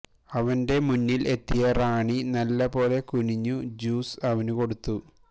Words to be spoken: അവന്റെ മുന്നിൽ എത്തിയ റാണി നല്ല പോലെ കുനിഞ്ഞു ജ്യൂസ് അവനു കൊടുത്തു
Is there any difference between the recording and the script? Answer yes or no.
no